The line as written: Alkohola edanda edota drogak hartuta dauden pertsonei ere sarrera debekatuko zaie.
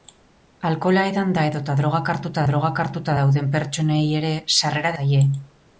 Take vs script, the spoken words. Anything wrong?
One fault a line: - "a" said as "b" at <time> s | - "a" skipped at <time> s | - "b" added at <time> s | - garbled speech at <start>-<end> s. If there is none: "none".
- "drogak hartuta" added at 2.5 s
- "debekatuko" skipped at 5.0 s